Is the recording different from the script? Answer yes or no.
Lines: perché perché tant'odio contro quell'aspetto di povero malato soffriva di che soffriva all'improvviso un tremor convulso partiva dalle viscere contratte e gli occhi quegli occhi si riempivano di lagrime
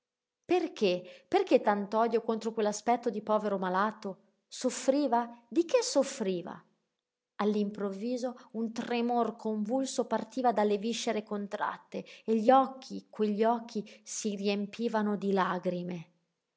no